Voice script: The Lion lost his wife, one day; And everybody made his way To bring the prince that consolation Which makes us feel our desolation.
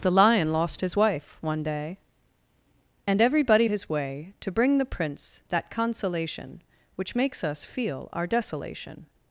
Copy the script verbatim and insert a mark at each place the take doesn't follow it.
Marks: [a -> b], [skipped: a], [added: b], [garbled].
The Lion lost his wife, one day; And everybody [skipped: made] his way To bring the prince that consolation Which makes us feel our desolation.